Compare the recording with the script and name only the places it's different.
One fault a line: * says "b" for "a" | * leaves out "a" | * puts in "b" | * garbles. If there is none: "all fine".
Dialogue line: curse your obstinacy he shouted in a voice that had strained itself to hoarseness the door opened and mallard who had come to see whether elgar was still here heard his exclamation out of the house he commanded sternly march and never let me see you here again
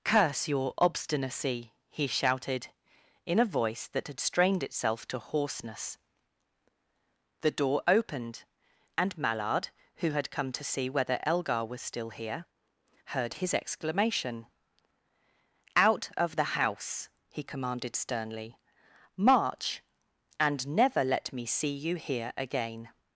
all fine